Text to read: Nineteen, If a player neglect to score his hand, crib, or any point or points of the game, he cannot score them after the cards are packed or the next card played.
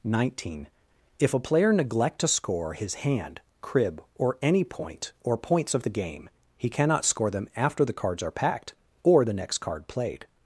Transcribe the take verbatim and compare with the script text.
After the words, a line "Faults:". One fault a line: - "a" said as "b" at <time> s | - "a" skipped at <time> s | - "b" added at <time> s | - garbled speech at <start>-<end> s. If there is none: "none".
Nineteen, If a player neglect to score his hand, crib, or any point or points of the game, he cannot score them after the cards are packed or the next card played.
Faults:
none